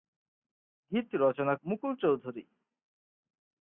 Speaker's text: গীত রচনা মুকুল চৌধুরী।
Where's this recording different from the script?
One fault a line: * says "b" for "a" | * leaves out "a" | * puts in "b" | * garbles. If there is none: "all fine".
all fine